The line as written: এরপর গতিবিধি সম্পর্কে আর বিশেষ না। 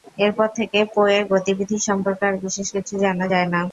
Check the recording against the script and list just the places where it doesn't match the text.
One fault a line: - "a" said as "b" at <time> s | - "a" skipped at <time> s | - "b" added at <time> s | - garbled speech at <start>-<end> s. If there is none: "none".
- "থেকে পো-এর" added at 0.6 s
- "কিছু জানা যায়" added at 2.7 s